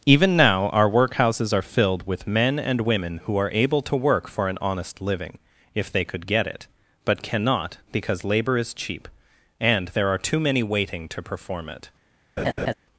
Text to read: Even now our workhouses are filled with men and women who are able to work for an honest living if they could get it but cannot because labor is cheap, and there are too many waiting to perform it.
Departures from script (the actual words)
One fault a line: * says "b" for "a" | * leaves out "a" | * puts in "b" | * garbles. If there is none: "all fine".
all fine